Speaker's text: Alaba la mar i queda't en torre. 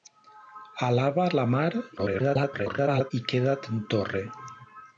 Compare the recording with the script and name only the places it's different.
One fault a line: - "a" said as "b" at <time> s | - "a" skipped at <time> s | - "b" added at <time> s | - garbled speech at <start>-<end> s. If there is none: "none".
- garbled speech at 2.0-3.1 s